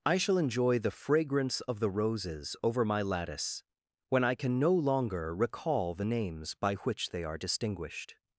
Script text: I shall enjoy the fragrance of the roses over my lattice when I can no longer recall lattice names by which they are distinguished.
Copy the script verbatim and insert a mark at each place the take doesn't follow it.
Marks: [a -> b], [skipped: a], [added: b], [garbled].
I shall enjoy the fragrance of the roses over my lattice when I can no longer recall [lattice -> the] names by which they are distinguished.